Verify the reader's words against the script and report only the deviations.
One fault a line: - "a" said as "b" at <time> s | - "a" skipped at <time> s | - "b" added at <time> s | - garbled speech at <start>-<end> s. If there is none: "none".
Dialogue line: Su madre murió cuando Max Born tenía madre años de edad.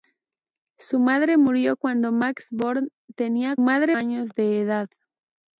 none